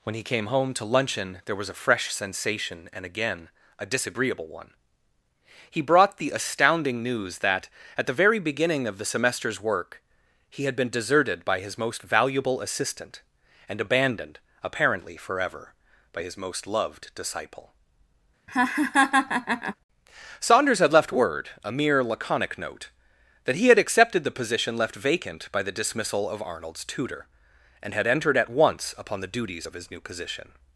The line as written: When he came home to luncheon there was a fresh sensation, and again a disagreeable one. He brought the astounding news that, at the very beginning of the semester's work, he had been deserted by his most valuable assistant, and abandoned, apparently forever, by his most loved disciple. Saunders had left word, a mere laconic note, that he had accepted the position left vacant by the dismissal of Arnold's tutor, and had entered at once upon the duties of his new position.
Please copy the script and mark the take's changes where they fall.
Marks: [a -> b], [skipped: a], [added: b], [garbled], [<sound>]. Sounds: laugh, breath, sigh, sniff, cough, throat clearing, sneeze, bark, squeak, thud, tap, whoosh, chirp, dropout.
When he came home to luncheon there was a fresh sensation, and again a disagreeable one. He brought the astounding news that, at the very beginning of the semester's work, he had been deserted by his most valuable assistant, and abandoned, apparently forever, by his most loved disciple. [laugh] Saunders had left word, a mere laconic note, that he had accepted the position left vacant by the dismissal of Arnold's tutor, and had entered at once upon the duties of his new position.